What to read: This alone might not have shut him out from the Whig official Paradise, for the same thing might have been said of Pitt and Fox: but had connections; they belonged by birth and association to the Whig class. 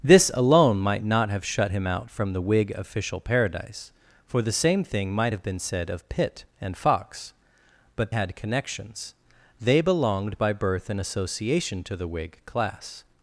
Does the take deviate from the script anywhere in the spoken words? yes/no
no